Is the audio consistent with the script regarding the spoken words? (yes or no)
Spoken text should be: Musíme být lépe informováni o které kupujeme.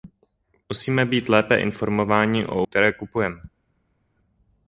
yes